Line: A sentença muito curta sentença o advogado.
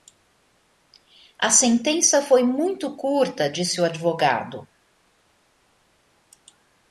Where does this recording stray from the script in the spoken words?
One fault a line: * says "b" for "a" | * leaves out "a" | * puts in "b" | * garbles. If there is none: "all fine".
* puts in "foi"
* says "disse" for "sentença"